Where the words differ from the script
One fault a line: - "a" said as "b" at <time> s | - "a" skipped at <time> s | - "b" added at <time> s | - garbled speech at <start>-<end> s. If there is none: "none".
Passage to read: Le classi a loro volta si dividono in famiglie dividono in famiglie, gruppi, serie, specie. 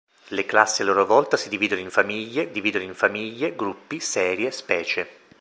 none